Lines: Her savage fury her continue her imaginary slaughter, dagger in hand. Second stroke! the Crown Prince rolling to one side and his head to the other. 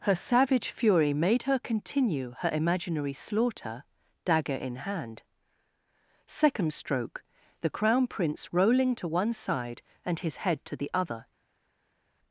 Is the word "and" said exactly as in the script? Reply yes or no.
yes